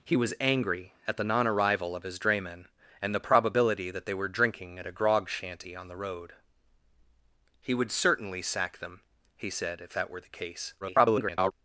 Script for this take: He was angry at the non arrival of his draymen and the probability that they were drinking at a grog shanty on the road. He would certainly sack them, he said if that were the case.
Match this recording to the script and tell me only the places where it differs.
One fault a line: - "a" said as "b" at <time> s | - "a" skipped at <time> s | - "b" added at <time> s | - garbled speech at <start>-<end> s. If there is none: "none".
- garbled speech at 10.8-11.5 s